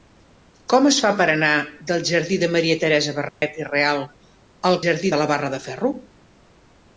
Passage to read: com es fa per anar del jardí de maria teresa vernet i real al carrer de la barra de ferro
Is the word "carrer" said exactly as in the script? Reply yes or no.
no